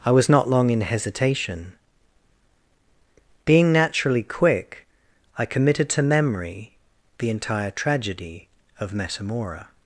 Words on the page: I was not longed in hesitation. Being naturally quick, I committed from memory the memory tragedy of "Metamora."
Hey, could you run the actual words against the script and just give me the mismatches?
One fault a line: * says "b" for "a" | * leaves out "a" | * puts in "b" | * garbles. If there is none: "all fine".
* says "long" for "longed"
* says "to" for "from"
* says "entire" for "memory"